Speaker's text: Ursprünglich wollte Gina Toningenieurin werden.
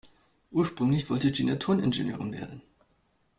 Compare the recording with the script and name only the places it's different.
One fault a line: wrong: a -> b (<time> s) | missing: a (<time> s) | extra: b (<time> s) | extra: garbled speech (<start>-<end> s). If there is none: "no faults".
no faults